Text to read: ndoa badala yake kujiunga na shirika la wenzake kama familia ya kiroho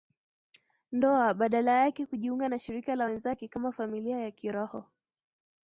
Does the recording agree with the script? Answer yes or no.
yes